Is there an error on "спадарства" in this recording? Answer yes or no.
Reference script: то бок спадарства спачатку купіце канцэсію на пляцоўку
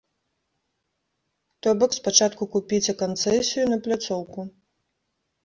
yes